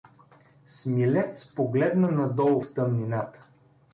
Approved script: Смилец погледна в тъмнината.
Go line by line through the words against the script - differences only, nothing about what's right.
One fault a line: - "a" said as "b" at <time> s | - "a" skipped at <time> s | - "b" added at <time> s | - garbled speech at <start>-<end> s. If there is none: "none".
- "надолу" added at 2.1 s